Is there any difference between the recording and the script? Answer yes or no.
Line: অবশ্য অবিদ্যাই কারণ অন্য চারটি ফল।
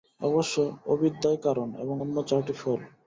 yes